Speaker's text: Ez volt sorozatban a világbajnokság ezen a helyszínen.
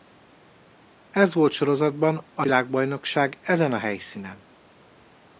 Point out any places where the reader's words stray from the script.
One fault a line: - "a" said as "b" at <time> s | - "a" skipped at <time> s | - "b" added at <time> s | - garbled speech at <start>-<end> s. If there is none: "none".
none